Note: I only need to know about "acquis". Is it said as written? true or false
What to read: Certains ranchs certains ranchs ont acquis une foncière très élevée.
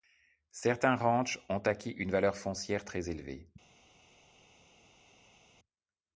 true